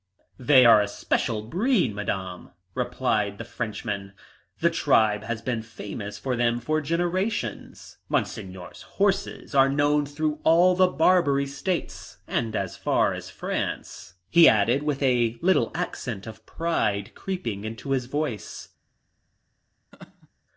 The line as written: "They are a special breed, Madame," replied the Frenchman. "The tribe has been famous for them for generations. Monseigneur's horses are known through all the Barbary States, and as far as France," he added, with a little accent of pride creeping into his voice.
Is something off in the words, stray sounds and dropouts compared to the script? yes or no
yes